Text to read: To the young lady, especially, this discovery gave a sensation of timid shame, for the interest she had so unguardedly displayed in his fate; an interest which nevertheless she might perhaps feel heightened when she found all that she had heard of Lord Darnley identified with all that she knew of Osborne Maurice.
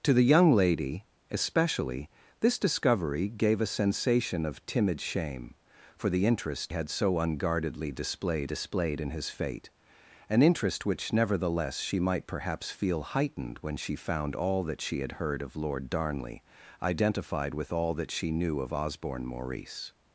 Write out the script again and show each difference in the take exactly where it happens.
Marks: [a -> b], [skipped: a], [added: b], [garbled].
To the young lady, especially, this discovery gave a sensation of timid shame, for the interest [skipped: she] had so unguardedly displayed [added: displayed] in his fate; an interest which nevertheless she might perhaps feel heightened when she found all that she had heard of Lord Darnley identified with all that she knew of Osborne Maurice.